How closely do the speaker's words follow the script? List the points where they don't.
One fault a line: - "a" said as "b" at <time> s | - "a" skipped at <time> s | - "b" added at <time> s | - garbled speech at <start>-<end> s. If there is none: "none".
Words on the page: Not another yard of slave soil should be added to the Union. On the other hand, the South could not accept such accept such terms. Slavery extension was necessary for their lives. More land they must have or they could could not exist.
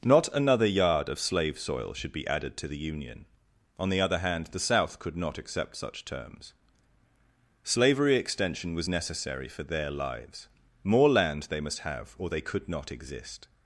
- "accept such" skipped at 6.0 s
- "could" skipped at 12.7 s